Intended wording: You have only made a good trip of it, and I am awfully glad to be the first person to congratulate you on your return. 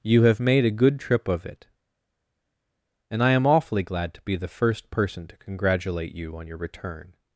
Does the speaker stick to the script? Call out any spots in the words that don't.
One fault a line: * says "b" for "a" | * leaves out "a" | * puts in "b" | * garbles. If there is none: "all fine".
* leaves out "only"